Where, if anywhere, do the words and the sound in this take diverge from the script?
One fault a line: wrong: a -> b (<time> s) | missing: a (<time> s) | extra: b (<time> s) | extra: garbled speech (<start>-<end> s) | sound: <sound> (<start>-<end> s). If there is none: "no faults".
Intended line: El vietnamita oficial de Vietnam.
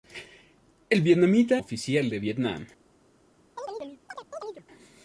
sound: chirp (3.6-4.7 s)